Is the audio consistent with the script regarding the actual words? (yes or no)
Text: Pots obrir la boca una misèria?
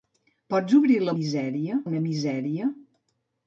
no